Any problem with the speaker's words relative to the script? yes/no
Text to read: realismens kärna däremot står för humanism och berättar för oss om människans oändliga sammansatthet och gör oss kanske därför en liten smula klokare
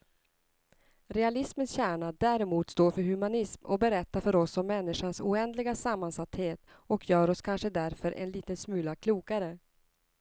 no